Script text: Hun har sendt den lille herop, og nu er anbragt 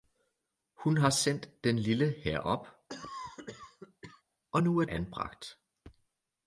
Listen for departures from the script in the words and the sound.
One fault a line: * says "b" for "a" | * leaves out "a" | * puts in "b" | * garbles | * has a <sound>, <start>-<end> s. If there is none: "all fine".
* has a cough, 2.9-4.2 s